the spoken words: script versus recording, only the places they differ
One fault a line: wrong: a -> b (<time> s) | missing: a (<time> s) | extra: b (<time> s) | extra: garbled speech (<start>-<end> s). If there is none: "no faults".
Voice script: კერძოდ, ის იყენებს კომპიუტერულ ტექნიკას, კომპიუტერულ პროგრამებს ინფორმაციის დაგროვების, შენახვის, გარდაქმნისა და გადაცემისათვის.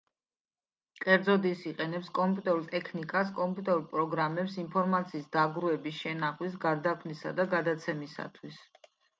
no faults